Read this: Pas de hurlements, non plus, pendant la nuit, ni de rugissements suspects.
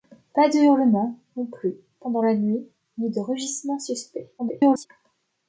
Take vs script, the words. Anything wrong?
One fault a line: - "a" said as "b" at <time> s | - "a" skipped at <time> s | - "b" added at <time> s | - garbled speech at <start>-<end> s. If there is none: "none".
- garbled speech at 4.4-4.9 s